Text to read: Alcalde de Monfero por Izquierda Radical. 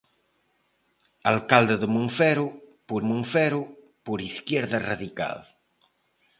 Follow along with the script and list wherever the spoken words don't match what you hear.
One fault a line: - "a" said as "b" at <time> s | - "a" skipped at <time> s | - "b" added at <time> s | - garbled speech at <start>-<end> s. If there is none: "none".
- "Monfero por" added at 3.0 s